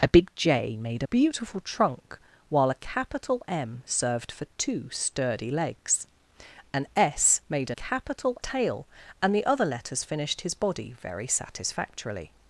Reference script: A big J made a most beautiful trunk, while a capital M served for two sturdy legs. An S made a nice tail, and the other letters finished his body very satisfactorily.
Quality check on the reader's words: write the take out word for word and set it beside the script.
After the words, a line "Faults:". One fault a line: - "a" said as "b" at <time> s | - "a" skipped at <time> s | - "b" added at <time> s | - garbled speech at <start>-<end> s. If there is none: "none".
A big J made a beautiful trunk, while a capital M served for two sturdy legs. An S made a capital tail, and the other letters finished his body very satisfactorily.
Faults:
- "most" skipped at 1.1 s
- "nice" said as "capital" at 7.7 s